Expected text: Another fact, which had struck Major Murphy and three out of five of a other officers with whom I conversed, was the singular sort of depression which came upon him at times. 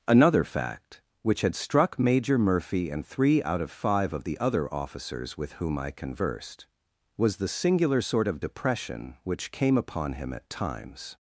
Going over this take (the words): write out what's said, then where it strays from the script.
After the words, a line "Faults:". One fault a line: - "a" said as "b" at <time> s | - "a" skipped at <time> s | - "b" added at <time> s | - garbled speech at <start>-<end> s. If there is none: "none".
Another fact, which had struck Major Murphy and three out of five of the other officers with whom I conversed, was the singular sort of depression which came upon him at times.
Faults:
- "a" said as "the" at 4.2 s